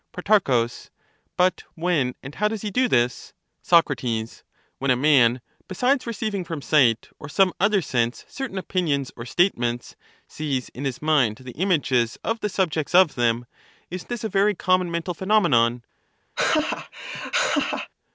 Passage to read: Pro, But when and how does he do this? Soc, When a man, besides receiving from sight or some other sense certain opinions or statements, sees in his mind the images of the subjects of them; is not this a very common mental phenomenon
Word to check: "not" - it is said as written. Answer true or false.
false